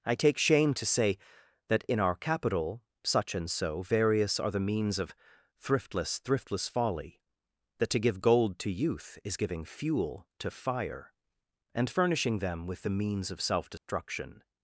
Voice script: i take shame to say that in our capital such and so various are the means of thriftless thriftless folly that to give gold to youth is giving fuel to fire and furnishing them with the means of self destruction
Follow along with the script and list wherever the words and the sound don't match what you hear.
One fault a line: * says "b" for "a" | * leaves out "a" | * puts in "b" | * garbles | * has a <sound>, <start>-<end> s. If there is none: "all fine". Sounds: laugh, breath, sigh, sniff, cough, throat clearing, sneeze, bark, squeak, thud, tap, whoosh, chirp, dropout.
* has a dropout, 13.8-13.9 s